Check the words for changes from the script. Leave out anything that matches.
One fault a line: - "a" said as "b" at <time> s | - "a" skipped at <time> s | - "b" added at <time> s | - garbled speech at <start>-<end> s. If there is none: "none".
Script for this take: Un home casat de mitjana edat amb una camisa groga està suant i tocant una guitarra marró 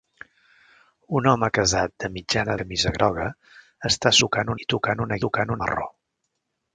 - "edat amb una" skipped at 2.5 s
- "suant" said as "tocant" at 4.2 s
- "guitarra" said as "tocant" at 5.3 s